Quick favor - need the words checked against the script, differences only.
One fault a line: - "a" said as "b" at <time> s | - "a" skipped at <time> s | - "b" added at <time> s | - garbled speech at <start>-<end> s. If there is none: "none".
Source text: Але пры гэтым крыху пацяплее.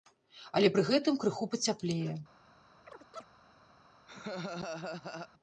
none